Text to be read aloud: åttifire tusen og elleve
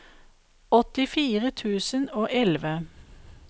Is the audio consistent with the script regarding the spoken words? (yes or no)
yes